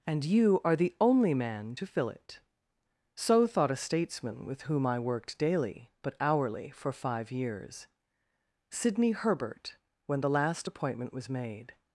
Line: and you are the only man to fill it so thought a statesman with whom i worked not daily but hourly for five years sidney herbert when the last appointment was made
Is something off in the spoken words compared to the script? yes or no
yes